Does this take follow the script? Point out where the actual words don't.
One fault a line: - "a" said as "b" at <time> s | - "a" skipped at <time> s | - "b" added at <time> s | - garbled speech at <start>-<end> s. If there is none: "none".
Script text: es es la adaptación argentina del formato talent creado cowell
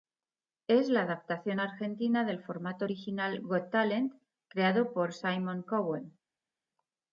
- "es" skipped at 0.9 s
- "original got" added at 2.8 s
- "por simon" added at 4.9 s